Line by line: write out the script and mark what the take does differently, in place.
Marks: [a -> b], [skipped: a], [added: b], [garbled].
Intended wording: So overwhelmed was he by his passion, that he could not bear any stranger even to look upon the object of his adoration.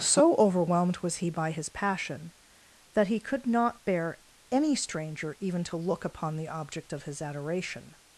So overwhelmed was he by his passion, that he could not bear any stranger even to look upon the object of his adoration.